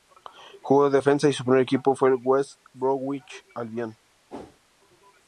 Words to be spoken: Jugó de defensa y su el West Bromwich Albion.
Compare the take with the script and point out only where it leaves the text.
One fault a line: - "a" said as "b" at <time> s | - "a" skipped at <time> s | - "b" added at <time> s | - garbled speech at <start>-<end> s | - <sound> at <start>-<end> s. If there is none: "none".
- "primer equipo fue" added at 1.4 s
- whoosh at 4.3-4.6 s